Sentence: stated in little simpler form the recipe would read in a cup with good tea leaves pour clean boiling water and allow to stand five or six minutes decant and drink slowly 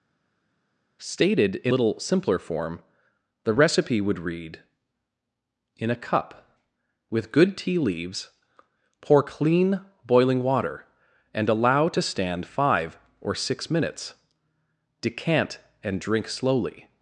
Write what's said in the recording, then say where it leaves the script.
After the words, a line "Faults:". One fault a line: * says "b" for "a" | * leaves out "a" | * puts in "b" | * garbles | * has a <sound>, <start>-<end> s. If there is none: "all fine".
stated in little simpler form the recipe would read in a cup with good tea leaves pour clean boiling water and allow to stand five or six minutes decant and drink slowly
Faults:
all fine